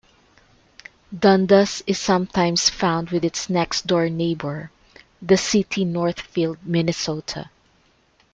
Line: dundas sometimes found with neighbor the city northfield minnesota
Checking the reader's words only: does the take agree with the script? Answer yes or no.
no